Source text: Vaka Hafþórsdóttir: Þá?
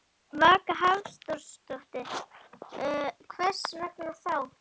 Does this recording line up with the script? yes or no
no